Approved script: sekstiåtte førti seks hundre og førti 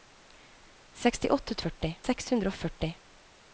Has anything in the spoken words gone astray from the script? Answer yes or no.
no